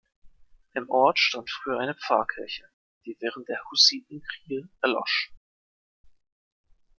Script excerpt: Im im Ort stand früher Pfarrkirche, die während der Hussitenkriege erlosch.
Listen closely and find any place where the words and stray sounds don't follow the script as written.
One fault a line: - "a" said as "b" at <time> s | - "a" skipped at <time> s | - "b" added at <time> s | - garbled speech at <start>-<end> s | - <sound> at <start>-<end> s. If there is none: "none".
- "im" skipped at 0.9 s
- "eine" added at 1.8 s